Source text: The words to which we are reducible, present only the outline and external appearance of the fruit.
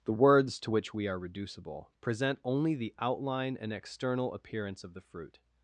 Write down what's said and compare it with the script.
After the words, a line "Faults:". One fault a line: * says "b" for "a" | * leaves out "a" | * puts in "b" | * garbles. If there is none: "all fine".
The words to which we are reducible, present only the outline and external appearance of the fruit.
Faults:
all fine